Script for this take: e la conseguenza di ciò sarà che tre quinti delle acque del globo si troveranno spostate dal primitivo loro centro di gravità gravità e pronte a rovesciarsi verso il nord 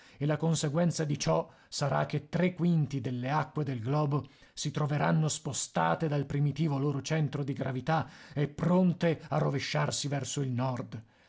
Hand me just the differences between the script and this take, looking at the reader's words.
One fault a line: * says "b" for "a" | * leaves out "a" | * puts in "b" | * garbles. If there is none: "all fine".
* leaves out "gravità"